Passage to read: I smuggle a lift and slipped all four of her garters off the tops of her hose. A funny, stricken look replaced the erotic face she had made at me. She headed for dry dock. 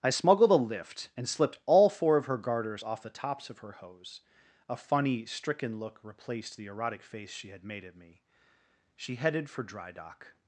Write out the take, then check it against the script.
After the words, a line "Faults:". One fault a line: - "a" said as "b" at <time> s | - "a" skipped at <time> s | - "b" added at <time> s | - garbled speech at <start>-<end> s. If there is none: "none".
I smuggled a lift and slipped all four of her garters off the tops of her hose. A funny, stricken look replaced the erotic face she had made at me. She headed for dry dock.
Faults:
- "smuggle" said as "smuggled" at 0.1 s